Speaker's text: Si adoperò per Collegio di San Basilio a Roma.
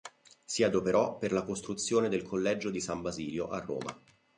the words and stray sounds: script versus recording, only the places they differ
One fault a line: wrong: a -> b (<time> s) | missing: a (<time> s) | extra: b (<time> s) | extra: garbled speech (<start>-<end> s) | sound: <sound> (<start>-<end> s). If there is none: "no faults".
extra: la costruzione del (1.3 s)